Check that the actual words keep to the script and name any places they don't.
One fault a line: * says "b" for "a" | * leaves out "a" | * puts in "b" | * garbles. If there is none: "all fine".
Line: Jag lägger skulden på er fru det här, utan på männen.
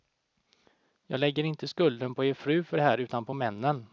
* puts in "inte"
* puts in "för"